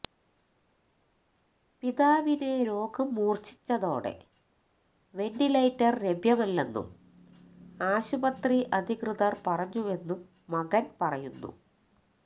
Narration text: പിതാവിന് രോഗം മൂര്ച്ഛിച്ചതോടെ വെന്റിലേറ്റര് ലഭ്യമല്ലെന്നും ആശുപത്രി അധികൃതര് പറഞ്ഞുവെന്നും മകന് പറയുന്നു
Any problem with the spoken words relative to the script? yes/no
no